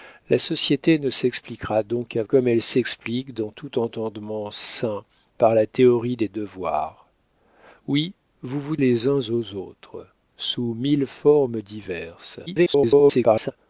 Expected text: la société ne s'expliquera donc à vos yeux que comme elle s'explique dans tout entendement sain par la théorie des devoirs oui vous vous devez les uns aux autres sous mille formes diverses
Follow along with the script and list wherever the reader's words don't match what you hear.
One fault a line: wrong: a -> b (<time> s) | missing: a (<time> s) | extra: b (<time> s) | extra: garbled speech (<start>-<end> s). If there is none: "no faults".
missing: vos yeux que (2.2 s)
missing: devez (8.8 s)
extra: garbled speech (12.5-13.5 s)